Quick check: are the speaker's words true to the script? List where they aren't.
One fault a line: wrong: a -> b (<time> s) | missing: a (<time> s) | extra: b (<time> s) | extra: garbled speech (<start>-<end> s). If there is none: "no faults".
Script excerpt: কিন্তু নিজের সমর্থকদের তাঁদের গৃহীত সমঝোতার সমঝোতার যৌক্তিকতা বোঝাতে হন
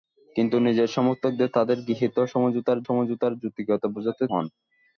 no faults